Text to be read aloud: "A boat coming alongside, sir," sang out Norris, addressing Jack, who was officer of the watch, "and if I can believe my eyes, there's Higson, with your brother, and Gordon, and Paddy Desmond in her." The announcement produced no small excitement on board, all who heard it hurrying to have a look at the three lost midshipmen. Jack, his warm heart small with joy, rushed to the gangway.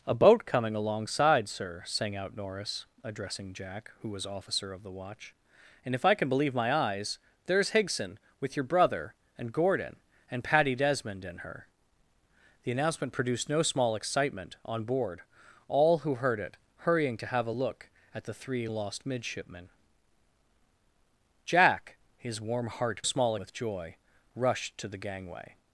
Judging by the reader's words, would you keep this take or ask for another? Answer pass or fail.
pass